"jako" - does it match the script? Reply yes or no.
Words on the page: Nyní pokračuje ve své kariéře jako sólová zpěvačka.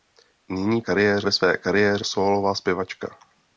no